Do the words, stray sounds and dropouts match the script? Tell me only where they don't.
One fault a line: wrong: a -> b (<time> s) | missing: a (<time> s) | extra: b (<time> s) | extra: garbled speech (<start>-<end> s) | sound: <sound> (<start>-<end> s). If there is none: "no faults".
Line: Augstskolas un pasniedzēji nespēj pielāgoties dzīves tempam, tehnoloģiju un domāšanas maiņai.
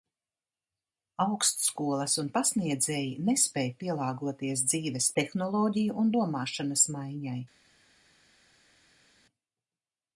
missing: tempam (5.1 s)